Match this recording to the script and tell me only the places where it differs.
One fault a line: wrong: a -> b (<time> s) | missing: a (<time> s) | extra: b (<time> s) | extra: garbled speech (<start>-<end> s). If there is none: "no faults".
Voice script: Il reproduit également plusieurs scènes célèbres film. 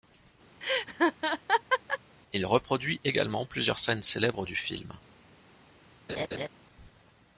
extra: du (4.4 s)